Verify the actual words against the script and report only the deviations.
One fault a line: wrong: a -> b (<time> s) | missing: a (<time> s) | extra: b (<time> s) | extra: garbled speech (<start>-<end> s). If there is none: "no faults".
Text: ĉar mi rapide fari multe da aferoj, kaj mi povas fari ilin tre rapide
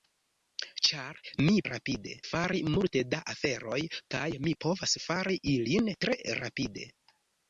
no faults